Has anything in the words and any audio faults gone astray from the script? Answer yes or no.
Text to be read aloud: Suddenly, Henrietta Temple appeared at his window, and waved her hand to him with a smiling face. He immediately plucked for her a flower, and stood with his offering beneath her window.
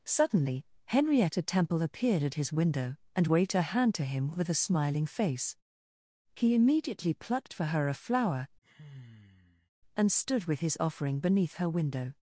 yes